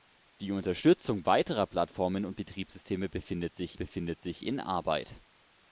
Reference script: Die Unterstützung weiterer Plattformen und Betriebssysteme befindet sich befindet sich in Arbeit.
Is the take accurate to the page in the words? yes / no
yes